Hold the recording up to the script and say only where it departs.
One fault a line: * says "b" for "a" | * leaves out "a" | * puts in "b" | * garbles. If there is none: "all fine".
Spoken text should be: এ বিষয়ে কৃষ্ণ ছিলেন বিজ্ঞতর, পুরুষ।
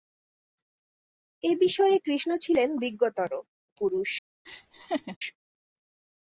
all fine